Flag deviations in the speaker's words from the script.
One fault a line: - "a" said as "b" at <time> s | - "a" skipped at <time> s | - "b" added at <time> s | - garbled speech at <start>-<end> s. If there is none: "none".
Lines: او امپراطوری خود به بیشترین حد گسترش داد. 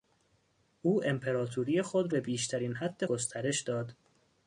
none